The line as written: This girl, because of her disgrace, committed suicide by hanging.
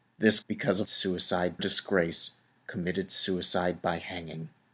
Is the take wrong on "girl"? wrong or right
wrong